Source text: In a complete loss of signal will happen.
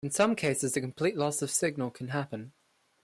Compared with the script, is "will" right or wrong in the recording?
wrong